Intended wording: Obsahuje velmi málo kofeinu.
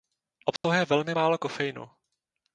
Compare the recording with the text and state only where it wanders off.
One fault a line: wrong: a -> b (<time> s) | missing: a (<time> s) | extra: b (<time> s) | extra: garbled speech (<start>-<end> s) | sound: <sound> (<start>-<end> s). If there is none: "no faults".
sound: dropout (0.6-0.6 s)